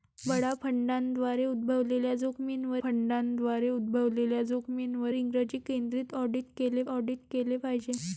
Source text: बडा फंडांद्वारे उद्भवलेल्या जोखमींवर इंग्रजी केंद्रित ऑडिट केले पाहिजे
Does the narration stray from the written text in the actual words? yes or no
yes